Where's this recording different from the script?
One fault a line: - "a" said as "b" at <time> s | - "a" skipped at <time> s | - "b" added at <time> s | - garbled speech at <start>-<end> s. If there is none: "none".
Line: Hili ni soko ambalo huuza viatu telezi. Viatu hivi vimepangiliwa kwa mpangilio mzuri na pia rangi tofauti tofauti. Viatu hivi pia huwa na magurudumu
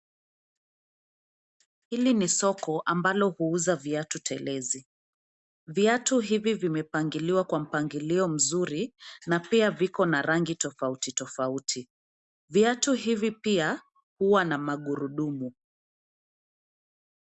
- "viko na" added at 9.7 s